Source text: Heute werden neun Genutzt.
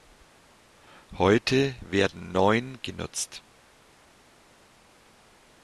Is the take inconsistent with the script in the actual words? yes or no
no